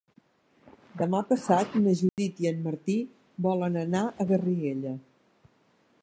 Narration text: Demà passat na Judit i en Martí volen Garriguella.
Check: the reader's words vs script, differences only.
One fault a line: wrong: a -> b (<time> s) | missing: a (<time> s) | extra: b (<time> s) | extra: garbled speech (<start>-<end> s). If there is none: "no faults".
extra: anar a (3.8 s)